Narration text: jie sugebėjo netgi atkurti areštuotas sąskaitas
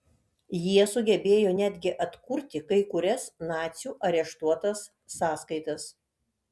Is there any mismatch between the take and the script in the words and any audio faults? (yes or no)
yes